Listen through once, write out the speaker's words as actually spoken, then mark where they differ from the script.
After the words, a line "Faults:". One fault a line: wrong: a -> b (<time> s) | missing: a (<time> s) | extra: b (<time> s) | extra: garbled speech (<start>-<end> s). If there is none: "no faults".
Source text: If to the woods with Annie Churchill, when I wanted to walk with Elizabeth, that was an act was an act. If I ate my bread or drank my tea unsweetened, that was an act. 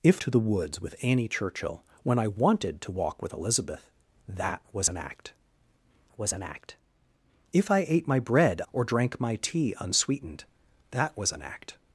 If to the woods with Annie Churchill, when I wanted to walk with Elizabeth, that was an act was an act. If I ate my bread or drank my tea unsweetened, that was an act.
Faults:
no faults